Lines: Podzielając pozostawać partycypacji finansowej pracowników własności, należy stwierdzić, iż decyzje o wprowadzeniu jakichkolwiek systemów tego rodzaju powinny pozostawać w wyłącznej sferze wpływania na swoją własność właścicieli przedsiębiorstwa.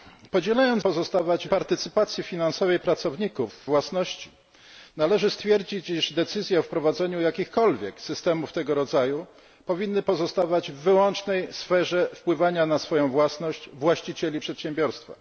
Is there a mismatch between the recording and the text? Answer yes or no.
no